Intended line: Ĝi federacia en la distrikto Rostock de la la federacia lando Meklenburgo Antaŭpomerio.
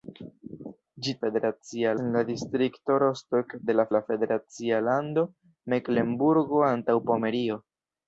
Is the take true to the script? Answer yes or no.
yes